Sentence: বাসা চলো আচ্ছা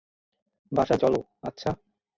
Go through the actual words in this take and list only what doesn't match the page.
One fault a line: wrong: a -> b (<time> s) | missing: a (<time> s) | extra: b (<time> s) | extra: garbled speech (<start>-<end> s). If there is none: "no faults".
no faults